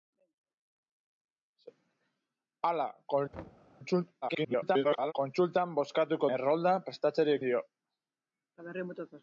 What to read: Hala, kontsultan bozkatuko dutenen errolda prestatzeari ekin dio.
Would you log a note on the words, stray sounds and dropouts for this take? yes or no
yes